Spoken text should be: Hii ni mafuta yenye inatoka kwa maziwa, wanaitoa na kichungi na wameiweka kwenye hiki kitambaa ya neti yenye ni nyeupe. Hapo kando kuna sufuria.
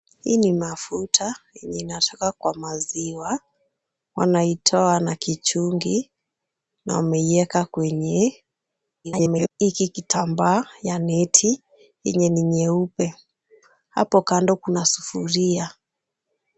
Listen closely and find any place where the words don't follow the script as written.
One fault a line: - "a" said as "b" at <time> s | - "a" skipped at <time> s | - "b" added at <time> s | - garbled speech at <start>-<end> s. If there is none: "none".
- garbled speech at 9.0-9.5 s